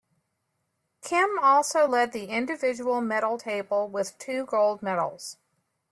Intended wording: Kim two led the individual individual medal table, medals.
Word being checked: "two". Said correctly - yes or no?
no